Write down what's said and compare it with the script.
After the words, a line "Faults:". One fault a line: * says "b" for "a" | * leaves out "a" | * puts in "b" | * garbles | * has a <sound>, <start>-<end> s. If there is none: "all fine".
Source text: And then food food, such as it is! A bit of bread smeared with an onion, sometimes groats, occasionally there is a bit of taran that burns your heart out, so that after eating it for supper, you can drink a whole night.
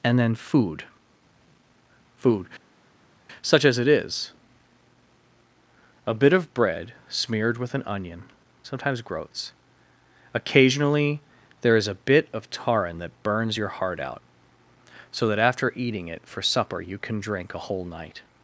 And then food food, such as it is! A bit of bread smeared with an onion, sometimes groats, occasionally there is a bit of taran that burns your heart out, so that after eating it for supper, you can drink a whole night.
Faults:
all fine